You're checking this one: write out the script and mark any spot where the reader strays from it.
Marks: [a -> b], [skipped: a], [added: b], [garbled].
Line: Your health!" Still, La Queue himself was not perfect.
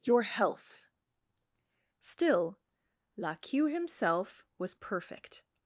Your health!" Still, La Queue himself was [skipped: not] perfect.